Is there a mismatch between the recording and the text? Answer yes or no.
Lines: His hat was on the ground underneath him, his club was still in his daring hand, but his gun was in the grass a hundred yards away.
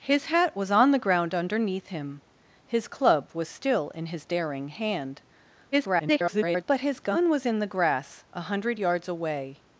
yes